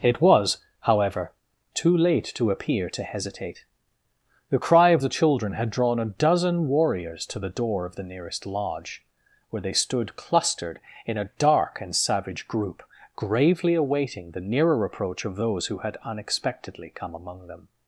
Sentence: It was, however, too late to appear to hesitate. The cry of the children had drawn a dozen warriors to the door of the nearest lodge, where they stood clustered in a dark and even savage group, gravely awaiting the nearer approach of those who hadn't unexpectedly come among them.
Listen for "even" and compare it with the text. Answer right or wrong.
wrong